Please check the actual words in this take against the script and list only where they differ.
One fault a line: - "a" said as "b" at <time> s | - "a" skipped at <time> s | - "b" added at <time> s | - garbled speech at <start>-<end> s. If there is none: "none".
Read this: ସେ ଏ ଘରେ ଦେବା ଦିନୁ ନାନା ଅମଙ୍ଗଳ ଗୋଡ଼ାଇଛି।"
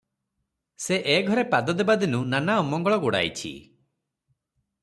- "ପାଦ" added at 1.5 s